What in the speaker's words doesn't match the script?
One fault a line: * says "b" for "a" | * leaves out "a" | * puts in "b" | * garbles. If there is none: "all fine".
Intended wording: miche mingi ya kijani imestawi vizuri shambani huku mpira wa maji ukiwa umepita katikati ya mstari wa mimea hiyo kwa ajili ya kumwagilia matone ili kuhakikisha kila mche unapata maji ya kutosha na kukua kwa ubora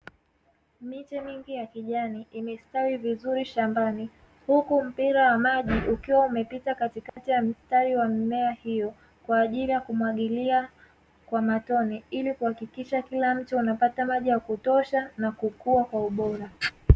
* puts in "kwa"